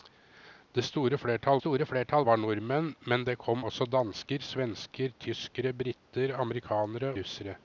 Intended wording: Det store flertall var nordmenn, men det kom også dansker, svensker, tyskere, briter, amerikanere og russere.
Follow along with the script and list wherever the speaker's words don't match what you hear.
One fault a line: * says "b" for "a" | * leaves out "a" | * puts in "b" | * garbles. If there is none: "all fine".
* puts in "store flertall"
* leaves out "og"